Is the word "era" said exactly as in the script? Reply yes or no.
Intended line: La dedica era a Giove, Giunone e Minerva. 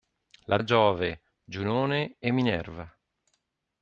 no